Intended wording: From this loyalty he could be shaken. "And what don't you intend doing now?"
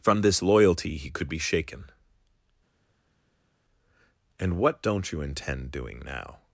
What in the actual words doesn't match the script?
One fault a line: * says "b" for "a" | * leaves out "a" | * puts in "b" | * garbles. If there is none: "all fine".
all fine